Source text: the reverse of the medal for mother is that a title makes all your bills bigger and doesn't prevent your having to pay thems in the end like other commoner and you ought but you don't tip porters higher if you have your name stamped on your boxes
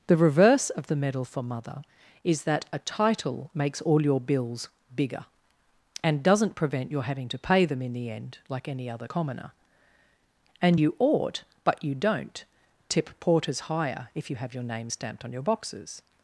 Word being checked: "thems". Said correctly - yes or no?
no